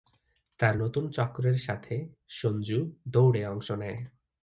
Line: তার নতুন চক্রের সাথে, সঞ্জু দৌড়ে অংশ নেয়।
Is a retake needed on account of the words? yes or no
no